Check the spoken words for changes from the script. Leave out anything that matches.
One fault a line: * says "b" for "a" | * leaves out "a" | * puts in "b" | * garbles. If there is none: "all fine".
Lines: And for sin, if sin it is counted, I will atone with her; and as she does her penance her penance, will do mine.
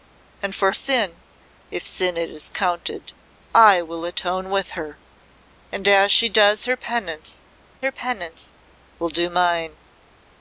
all fine